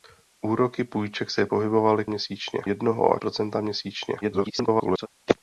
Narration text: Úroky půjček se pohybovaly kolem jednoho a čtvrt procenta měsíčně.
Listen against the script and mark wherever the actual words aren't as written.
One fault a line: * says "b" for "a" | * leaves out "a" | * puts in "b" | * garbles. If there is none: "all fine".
* says "měsíčně" for "kolem"
* leaves out "čtvrt"
* garbles